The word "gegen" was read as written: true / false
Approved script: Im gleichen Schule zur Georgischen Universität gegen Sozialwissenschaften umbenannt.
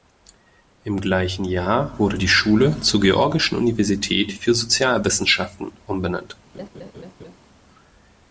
false